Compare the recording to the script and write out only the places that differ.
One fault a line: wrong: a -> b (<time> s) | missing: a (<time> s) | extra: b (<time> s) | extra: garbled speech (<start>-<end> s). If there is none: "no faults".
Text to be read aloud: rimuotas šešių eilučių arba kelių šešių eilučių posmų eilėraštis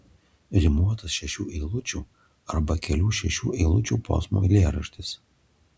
no faults